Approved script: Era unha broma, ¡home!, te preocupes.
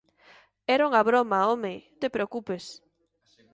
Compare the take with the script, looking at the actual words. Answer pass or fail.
pass